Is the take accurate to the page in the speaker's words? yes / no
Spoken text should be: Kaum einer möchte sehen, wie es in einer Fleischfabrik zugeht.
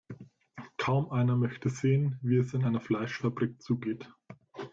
yes